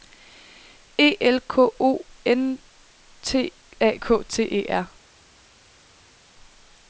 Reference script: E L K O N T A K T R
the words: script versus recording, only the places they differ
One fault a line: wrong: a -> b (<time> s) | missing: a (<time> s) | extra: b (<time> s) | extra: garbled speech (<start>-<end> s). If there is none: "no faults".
extra: E (4.4 s)